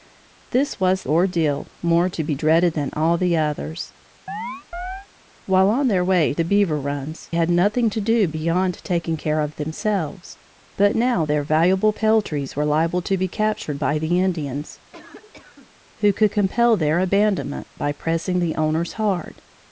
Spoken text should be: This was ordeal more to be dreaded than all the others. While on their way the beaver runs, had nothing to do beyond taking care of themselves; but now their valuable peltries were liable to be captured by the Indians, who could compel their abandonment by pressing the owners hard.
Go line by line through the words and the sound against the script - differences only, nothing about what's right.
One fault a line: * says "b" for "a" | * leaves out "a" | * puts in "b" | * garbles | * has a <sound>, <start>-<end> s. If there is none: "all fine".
* has a chirp, 4.3-5.1 s
* has a cough, 14.9-15.8 s